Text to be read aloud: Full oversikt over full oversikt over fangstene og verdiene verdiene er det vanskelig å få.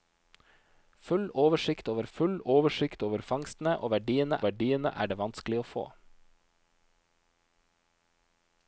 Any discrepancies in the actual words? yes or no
no